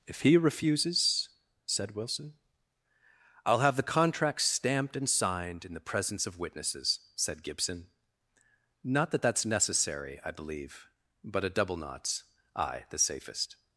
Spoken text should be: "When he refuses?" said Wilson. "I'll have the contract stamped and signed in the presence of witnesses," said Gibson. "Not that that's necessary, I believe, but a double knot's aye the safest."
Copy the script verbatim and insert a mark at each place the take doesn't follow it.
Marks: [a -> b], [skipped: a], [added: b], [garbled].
["When -> If] he refuses?" said Wilson. "I'll have the contract stamped and signed in the presence of witnesses," said Gibson. "Not that that's necessary, I believe, but a double knot's aye the safest."